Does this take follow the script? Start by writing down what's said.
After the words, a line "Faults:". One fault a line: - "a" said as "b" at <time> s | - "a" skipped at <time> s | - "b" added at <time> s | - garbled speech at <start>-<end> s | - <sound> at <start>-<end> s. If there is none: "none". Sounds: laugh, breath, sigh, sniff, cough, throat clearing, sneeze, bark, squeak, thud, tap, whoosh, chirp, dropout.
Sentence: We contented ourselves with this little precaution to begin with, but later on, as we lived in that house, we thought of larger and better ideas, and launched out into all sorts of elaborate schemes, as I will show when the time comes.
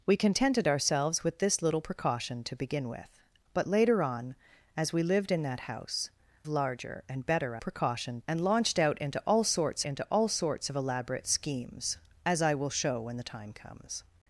We contented ourselves with this little precaution to begin with, but later on, as we lived in that house, larger and better precaution, and launched out into all sorts into all sorts of elaborate schemes, as I will show when the time comes.
Faults:
- "we thought of" skipped at 6.1 s
- "ideas" said as "precaution" at 7.6 s
- "into all sorts" added at 9.8 s